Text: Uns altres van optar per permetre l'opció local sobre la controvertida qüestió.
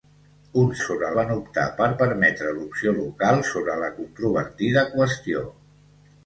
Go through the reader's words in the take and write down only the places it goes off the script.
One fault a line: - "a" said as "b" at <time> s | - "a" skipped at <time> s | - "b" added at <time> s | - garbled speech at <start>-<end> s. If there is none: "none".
- "altres" said as "sobre" at 0.9 s